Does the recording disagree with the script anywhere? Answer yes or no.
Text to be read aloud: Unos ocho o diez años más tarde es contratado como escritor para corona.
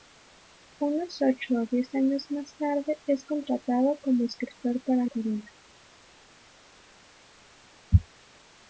no